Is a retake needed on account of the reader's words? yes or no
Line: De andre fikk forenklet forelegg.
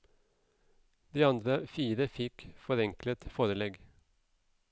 yes